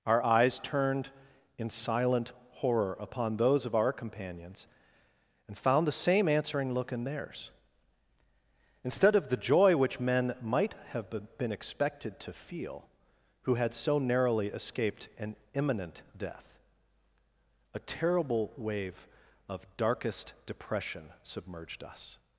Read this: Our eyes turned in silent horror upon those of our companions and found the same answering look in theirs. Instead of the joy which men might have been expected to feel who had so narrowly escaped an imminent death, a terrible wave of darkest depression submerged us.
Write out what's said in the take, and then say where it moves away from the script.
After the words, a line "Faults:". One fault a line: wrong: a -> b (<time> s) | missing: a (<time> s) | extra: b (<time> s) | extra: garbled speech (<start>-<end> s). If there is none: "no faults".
Our eyes turned in silent horror upon those of our companions and found the same answering look in theirs. Instead of the joy which men might have been expected to feel who had so narrowly escaped an imminent death, a terrible wave of darkest depression submerged us.
Faults:
no faults